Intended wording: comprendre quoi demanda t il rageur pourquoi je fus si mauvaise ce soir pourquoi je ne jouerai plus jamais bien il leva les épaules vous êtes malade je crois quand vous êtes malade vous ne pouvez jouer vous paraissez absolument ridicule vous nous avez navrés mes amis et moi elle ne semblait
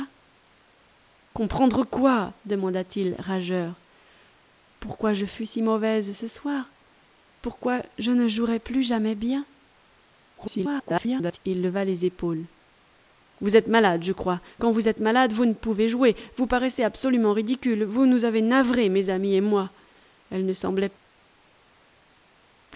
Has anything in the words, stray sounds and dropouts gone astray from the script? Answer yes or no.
yes